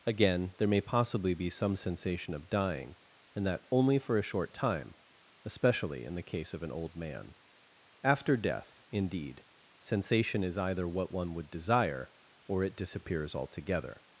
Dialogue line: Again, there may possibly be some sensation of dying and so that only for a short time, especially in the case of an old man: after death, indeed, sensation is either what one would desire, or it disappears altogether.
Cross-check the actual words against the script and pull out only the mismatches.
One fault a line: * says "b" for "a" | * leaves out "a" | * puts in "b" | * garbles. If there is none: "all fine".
* leaves out "so"